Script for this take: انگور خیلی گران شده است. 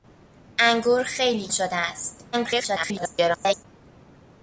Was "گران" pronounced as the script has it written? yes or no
no